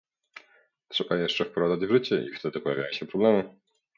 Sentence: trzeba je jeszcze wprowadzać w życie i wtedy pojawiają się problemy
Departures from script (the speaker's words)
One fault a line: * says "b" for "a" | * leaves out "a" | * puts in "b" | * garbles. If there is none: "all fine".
all fine